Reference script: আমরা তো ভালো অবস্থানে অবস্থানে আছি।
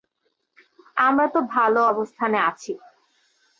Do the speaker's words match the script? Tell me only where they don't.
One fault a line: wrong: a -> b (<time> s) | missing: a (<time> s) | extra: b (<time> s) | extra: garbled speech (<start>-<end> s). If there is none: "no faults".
missing: অবস্থানে (2.4 s)